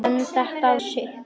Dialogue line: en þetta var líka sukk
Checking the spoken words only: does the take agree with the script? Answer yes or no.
no